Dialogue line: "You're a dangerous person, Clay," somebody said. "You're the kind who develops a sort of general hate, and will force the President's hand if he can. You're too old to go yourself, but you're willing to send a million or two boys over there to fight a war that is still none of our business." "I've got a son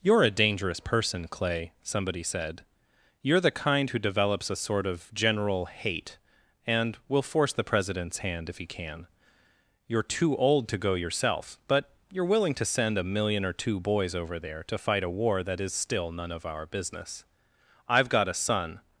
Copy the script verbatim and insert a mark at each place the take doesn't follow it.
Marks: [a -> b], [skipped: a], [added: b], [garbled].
"You're a dangerous person, Clay," somebody said. "You're the kind who develops a sort of general hate, and will force the President's hand if he can. You're too old to go yourself, but you're willing to send a million or two boys over there to fight a war that is still none of our business." "I've got a son